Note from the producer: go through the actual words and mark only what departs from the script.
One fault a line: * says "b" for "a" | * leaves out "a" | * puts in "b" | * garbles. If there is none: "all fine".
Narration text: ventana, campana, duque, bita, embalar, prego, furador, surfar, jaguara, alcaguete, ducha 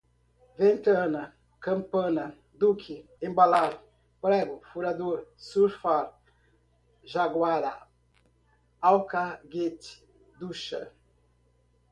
* leaves out "bita"